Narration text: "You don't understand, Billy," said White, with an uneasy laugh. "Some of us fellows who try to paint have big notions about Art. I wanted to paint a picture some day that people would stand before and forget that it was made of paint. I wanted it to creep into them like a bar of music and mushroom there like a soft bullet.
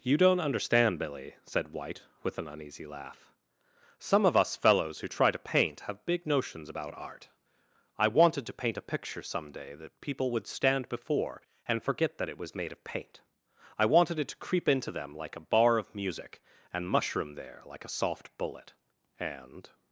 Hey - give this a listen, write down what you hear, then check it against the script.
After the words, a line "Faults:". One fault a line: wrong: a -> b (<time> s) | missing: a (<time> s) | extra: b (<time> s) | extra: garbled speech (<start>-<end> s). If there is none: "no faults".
"You don't understand, Billy," said White, with an uneasy laugh. "Some of us fellows who try to paint have big notions about Art. I wanted to paint a picture some day that people would stand before and forget that it was made of paint. I wanted it to creep into them like a bar of music and mushroom there like a soft bullet. And
Faults:
extra: And (19.2 s)